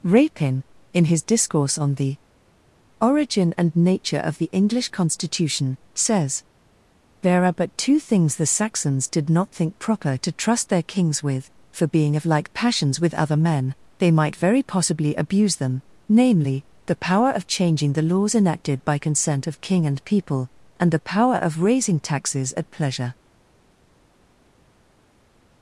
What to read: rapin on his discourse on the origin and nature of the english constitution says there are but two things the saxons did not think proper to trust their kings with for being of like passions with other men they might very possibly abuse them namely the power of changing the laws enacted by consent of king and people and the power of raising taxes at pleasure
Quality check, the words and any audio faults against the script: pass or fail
fail